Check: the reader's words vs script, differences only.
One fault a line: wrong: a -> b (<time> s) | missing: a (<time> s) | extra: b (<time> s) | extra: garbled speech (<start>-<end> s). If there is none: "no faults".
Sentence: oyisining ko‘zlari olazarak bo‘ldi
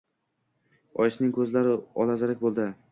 no faults